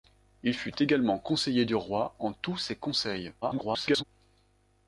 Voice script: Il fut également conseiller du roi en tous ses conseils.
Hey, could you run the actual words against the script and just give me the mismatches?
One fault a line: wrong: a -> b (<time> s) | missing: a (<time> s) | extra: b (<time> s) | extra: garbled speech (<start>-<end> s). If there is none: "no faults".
extra: garbled speech (3.4-4.0 s)